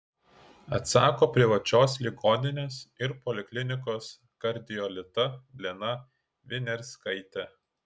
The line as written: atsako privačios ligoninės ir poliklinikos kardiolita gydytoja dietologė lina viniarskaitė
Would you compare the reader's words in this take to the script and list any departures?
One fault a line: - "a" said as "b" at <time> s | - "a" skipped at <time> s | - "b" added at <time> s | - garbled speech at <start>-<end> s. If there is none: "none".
- "gydytoja dietologė" skipped at 5.3 s